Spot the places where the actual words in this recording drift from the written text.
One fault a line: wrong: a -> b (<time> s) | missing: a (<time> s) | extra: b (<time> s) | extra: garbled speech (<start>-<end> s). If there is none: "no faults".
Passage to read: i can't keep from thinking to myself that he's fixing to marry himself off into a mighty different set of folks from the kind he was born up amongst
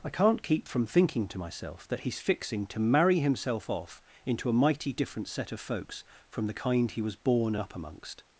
no faults